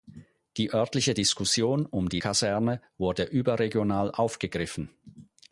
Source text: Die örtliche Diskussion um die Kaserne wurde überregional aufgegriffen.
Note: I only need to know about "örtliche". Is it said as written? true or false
true